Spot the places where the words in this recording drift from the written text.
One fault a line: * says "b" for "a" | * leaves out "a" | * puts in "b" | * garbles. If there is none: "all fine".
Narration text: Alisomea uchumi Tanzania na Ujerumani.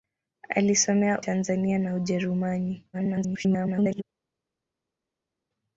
* leaves out "uchumi"
* garbles